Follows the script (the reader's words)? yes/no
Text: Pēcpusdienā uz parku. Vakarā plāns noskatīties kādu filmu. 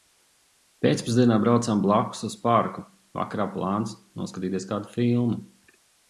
no